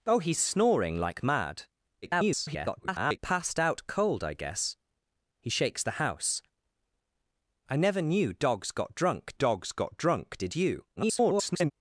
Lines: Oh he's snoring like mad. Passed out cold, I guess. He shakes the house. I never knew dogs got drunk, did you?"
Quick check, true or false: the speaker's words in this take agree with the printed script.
false